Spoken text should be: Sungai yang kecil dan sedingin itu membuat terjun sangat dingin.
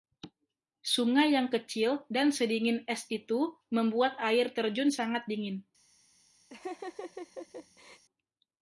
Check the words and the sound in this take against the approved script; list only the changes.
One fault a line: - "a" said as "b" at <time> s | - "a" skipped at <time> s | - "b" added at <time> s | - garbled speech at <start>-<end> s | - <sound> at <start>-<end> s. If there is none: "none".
- "es" added at 2.9 s
- "air" added at 4.2 s
- laugh at 6.5-8.0 s